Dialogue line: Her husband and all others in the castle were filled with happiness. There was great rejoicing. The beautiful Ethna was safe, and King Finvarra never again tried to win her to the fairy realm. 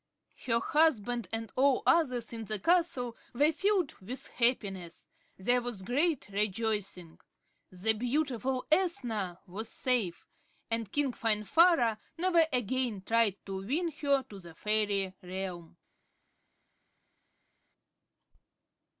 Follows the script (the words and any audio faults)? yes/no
yes